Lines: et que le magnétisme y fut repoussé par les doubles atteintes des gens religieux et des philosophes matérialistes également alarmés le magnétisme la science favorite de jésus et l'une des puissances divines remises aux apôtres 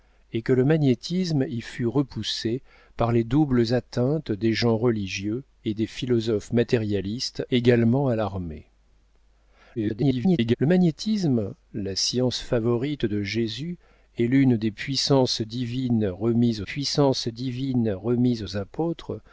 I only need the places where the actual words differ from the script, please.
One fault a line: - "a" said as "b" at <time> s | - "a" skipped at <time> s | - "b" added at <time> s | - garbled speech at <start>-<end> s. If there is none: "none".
- garbled speech at 9.7-10.6 s
- "puissances divines remises" added at 16.6 s